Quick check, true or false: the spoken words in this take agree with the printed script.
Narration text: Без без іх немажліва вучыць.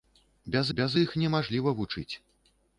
true